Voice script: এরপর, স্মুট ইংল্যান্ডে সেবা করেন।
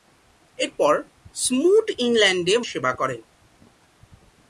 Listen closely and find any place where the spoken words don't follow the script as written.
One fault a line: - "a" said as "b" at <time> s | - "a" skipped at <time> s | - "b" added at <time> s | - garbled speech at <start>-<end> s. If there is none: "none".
none